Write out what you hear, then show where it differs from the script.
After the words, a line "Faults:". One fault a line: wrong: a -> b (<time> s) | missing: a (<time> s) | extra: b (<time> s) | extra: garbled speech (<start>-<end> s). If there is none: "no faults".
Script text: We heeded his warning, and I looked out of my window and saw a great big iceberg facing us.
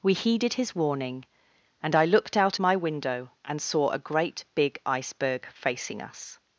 We heeded his warning, and I looked out my window and saw a great big iceberg facing us.
Faults:
missing: of (2.6 s)